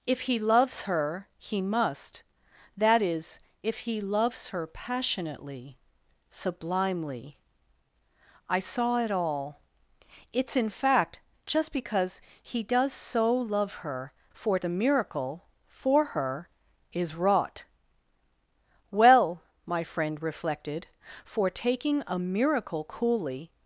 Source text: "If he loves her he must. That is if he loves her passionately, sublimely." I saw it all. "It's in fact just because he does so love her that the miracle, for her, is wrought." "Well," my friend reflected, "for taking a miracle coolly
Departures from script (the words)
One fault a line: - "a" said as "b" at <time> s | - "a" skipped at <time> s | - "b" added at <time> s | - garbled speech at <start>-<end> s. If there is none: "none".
- "that" said as "for" at 14.3 s